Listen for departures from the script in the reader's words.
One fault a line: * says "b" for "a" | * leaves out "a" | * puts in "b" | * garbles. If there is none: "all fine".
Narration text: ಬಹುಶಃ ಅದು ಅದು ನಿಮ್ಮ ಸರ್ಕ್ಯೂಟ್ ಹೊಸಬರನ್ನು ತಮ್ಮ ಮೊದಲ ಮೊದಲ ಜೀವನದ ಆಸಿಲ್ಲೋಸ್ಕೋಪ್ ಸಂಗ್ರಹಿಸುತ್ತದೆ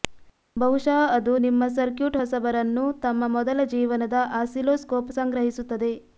* leaves out "ಅದು"
* leaves out "ಮೊದಲ"